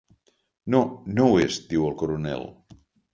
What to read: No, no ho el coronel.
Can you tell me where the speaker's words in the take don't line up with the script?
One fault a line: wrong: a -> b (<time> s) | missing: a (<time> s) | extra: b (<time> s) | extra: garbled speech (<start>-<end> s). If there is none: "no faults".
extra: és diu (1.4 s)